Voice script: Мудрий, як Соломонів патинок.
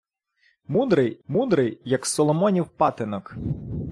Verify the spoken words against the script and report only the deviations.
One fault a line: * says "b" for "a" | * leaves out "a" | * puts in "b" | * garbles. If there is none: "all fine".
* puts in "мудрий"